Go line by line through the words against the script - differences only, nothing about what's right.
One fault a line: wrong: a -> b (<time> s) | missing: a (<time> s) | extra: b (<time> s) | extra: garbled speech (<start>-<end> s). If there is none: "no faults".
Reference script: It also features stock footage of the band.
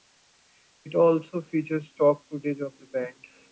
no faults